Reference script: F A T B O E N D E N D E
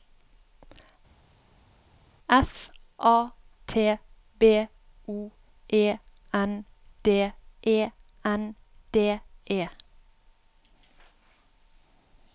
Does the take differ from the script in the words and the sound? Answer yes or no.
no